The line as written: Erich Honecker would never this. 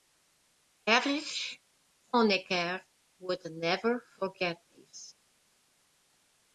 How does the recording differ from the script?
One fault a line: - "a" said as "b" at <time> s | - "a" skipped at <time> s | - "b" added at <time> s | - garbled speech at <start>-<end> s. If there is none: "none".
- "forget" added at 4.0 s